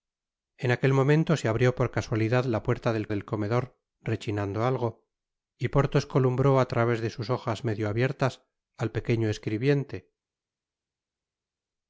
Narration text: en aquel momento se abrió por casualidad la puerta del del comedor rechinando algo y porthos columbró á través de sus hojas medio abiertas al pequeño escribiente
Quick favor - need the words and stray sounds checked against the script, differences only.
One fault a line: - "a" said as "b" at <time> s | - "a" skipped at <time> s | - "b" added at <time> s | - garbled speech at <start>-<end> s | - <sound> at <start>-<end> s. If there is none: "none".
none